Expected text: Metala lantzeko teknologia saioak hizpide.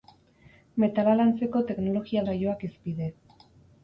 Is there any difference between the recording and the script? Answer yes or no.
no